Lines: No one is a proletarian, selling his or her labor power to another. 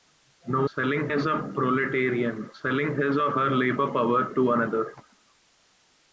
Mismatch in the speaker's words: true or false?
true